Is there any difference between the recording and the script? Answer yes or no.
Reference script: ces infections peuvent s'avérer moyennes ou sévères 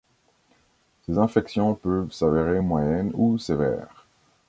no